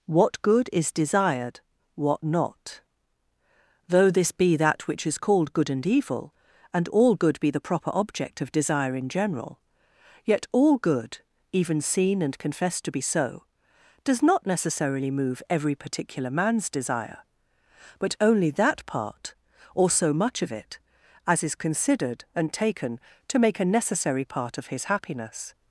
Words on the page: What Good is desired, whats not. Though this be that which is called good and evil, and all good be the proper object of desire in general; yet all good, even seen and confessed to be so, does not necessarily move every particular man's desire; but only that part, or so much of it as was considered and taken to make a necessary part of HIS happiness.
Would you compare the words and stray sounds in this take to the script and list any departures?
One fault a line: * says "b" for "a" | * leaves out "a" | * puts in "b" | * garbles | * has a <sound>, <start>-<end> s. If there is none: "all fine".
* says "what" for "whats"
* says "is" for "was"